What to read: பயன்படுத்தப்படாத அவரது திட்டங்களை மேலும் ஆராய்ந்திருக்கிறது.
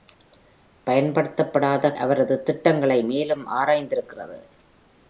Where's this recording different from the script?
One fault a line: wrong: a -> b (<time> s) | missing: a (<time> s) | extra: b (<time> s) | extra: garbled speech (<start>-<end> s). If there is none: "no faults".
no faults